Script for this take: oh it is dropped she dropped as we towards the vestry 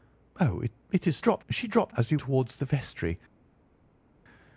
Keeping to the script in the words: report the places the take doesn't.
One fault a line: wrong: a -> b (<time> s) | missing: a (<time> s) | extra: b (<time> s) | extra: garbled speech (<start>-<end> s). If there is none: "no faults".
no faults